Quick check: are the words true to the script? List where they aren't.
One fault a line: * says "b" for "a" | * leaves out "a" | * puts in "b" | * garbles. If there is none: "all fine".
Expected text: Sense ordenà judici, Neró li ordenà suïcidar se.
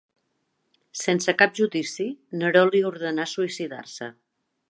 * says "cap" for "ordenà"